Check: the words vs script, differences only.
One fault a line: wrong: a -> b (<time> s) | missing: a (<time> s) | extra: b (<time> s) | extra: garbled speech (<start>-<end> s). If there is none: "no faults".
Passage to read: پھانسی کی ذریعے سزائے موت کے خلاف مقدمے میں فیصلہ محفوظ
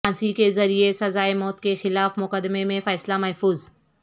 wrong: کی -> کے (0.3 s)